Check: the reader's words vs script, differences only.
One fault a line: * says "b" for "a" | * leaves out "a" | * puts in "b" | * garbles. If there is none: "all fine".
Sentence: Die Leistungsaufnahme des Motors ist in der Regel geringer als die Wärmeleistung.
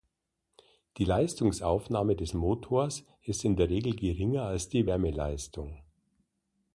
all fine